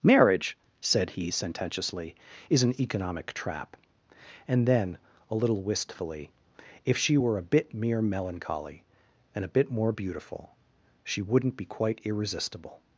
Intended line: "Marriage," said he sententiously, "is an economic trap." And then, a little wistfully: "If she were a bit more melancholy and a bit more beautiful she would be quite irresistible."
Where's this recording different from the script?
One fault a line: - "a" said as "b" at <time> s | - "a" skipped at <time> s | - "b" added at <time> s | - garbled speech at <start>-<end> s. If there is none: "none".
- "more" said as "mere" at 7.7 s
- "would" said as "wouldn't" at 11.2 s